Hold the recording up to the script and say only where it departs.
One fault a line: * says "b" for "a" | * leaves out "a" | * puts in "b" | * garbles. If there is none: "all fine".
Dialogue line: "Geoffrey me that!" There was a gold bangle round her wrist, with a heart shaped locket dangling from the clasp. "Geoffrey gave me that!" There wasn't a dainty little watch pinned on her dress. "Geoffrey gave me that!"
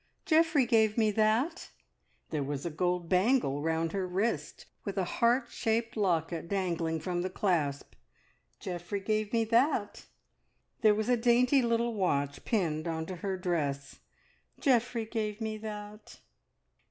* puts in "gave"
* says "was" for "wasn't"
* puts in "to"